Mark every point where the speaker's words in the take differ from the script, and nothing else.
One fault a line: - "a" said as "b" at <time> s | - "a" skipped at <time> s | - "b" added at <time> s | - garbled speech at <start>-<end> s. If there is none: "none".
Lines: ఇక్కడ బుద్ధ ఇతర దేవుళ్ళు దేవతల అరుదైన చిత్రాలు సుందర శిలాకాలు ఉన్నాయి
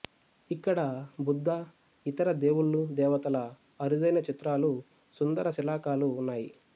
none